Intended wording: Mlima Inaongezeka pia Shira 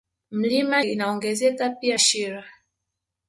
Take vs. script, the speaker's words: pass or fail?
pass